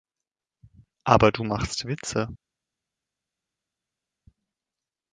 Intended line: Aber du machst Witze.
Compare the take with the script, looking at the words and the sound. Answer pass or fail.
pass